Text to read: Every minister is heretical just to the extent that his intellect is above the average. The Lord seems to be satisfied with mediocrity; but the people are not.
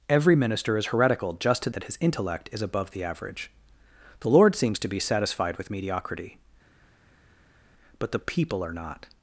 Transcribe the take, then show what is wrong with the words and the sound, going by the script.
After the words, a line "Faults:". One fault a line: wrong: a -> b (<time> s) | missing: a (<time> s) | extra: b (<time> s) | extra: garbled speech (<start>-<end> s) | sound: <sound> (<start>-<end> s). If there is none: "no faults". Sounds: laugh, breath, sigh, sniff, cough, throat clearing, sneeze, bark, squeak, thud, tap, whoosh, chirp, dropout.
Every minister is heretical just to that his intellect is above the average. The Lord seems to be satisfied with mediocrity; but the people are not.
Faults:
missing: the extent (1.7 s)